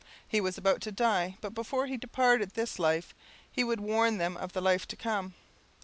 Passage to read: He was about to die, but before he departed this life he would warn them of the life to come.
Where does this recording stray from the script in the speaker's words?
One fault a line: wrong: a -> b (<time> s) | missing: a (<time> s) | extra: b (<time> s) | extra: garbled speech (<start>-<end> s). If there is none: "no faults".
no faults